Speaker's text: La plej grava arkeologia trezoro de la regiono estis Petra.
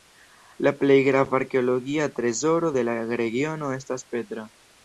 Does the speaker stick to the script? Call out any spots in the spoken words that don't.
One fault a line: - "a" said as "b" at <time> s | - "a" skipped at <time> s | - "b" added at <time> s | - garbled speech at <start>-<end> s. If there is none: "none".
- "estis" said as "estas" at 3.8 s